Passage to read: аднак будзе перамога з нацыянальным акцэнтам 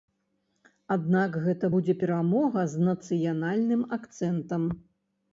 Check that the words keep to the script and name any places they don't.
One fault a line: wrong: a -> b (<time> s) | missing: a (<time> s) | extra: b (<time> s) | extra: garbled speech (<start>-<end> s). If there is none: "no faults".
extra: гэта (1.4 s)